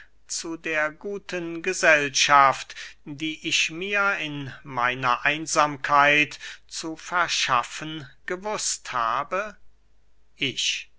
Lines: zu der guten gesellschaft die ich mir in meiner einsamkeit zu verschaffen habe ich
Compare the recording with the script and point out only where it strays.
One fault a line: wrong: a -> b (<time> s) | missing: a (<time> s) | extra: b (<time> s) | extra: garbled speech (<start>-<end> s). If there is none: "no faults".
extra: gewußt (8.2 s)